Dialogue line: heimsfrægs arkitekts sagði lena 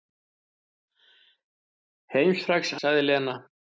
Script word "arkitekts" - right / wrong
wrong